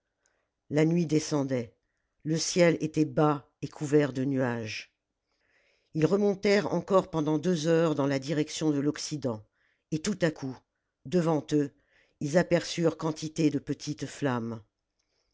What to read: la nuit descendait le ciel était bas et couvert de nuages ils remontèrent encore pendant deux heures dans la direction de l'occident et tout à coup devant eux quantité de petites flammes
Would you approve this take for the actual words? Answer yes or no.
no